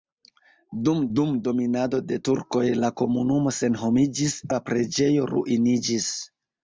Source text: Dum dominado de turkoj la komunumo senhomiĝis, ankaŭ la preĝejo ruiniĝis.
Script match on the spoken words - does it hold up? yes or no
no